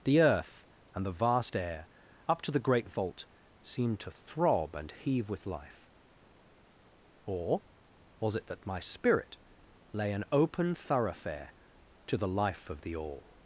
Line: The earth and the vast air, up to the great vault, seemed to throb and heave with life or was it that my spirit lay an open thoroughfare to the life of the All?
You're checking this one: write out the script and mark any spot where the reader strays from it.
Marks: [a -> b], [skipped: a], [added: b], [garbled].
The earth and the vast air, up to the great vault, seemed to throb and heave with life or was it that my spirit lay an open thoroughfare to the life of the All?